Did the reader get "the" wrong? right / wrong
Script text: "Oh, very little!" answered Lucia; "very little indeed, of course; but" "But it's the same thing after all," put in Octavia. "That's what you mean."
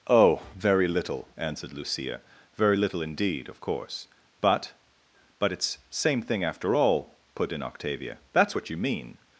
wrong